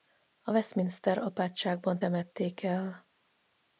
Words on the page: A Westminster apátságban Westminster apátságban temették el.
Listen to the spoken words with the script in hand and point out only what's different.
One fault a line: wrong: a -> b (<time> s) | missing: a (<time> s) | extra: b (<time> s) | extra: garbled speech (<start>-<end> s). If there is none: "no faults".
missing: Westminster apátságban (2.0 s)